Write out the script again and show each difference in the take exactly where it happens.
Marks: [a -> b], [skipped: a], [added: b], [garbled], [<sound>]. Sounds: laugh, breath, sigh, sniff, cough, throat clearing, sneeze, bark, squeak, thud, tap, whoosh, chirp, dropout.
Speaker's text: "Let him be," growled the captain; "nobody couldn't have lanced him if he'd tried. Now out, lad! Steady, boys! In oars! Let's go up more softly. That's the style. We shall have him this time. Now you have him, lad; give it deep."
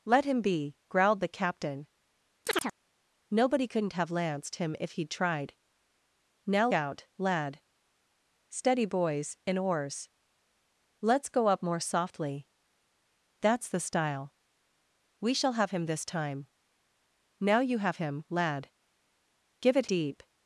"Let him be," growled the captain; [chirp] "nobody couldn't have lanced him if he'd tried. Now out, lad! Steady, boys! In oars! Let's go up more softly. That's the style. We shall have him this time. Now you have him, lad; give it deep."